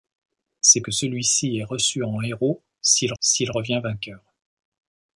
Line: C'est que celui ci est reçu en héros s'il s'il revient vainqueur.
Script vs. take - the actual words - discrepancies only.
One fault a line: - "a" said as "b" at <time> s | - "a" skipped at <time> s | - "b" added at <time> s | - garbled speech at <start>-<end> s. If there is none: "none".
none